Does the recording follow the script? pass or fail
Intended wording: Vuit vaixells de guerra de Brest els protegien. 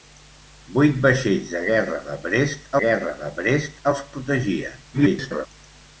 fail